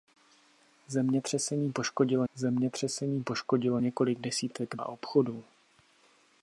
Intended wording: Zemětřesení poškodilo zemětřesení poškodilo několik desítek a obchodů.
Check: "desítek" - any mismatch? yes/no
no